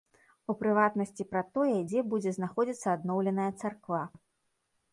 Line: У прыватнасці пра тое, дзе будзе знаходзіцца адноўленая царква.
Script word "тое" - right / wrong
right